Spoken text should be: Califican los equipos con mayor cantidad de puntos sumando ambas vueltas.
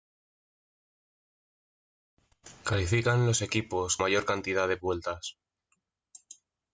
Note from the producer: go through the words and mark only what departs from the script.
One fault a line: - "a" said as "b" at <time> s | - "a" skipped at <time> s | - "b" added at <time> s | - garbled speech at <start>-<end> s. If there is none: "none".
- "con" skipped at 4.0 s
- "puntos sumando ambas" skipped at 4.8 s